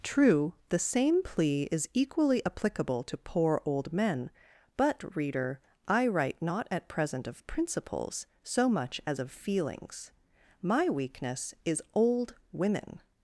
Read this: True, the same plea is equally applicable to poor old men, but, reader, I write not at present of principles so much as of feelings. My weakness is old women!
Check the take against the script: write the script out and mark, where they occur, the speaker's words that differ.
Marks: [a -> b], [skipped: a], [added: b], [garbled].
True, the same plea is equally applicable to poor old men, but, reader, I write not at present of principles so much as of feelings. My weakness is old women!